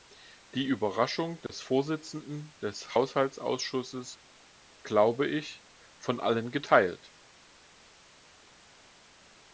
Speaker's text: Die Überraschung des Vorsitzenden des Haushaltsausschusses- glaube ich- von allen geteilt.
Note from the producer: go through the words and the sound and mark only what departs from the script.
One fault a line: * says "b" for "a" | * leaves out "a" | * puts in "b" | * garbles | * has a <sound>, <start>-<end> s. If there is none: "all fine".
* has a dropout, 1.5-1.5 s